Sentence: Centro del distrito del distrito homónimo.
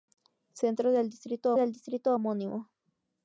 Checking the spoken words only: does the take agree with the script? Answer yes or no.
yes